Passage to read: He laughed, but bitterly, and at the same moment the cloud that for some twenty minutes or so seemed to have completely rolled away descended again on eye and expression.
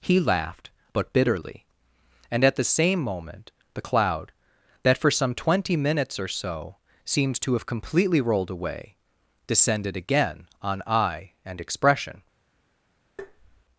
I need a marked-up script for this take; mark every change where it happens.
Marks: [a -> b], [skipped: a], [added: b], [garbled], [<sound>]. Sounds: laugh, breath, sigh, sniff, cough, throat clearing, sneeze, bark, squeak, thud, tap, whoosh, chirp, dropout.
He laughed, but bitterly, and at the same moment the cloud that for some twenty minutes or so seemed to have completely rolled away descended again on eye and expression. [tap]